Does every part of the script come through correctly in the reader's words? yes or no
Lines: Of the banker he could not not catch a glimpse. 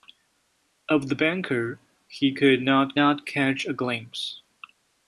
yes